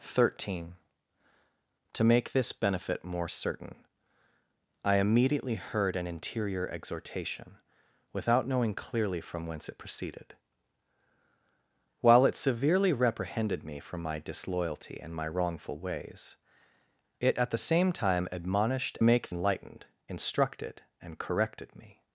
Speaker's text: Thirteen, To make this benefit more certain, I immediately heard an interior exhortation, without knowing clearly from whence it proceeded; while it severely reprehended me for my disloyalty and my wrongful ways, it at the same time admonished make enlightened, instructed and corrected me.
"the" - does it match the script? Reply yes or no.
yes